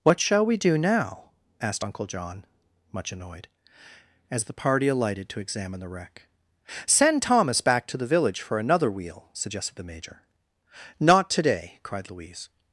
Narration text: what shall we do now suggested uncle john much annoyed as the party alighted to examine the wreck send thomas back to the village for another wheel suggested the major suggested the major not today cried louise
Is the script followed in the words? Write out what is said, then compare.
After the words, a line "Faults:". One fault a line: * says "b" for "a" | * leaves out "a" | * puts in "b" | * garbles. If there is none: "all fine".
what shall we do now asked uncle john much annoyed as the party alighted to examine the wreck send thomas back to the village for another wheel suggested the major not today cried louise
Faults:
* says "asked" for "suggested"
* leaves out "suggested the major"